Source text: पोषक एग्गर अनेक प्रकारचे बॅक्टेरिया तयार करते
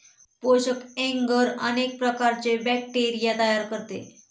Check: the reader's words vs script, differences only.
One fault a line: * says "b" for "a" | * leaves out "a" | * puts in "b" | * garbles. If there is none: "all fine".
all fine